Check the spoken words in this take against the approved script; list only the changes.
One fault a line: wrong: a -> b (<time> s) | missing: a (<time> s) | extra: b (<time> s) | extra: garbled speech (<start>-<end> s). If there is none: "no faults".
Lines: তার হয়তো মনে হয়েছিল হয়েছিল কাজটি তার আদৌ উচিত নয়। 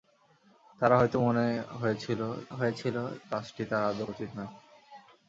no faults